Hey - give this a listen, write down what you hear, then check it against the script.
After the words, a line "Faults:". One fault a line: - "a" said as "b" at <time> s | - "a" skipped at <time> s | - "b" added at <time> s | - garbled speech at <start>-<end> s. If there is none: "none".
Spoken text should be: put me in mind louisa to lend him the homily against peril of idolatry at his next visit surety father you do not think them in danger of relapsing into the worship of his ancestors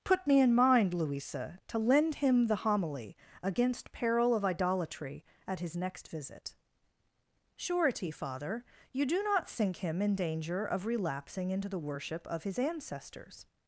put me in mind louisa to lend him the homily against peril of idolatry at his next visit surety father you do not think him in danger of relapsing into the worship of his ancestors
Faults:
- "them" said as "him" at 9.7 s